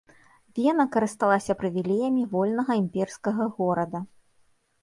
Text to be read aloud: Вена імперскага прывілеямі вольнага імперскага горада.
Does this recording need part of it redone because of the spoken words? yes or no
yes